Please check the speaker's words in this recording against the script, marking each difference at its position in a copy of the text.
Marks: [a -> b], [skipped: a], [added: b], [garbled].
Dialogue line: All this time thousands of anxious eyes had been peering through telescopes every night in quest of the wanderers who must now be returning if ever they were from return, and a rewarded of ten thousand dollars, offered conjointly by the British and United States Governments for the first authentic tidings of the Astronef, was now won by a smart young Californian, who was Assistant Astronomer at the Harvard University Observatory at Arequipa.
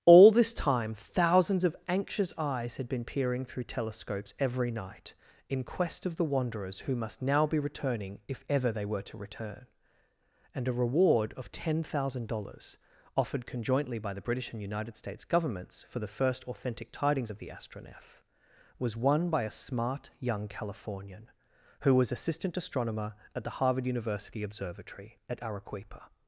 All this time thousands of anxious eyes had been peering through telescopes every night in quest of the wanderers who must now be returning if ever they were [from -> to] return, and a [rewarded -> reward] of ten thousand dollars, offered conjointly by the British and United States Governments for the first authentic tidings of the Astronef, was [skipped: now] won by a smart young Californian, who was Assistant Astronomer at the Harvard University Observatory at Arequipa.